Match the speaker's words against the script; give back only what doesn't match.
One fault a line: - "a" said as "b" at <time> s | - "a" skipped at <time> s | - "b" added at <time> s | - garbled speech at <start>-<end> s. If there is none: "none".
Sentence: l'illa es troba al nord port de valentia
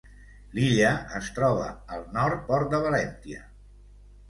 none